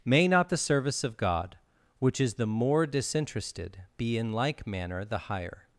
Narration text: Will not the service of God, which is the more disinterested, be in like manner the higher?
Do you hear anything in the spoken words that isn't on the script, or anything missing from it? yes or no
yes